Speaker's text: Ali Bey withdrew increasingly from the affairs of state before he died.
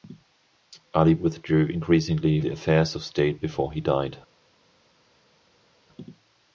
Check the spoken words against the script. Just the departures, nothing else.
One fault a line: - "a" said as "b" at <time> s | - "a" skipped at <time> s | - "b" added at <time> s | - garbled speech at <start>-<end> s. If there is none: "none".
- "Bey" skipped at 1.1 s
- "from" skipped at 2.4 s